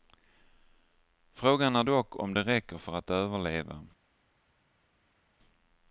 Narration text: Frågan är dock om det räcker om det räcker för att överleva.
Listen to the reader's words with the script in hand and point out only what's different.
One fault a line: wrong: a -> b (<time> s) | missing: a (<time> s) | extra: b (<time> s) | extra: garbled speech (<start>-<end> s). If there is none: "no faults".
missing: om det räcker (2.8 s)